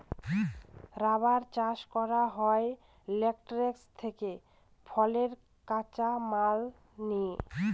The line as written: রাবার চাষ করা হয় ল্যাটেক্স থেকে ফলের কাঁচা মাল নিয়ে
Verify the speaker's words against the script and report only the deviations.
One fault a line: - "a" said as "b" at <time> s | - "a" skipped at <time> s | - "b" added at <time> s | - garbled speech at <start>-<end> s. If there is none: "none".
none